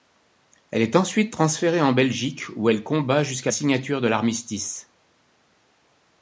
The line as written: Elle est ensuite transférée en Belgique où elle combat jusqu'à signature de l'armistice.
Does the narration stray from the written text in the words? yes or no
no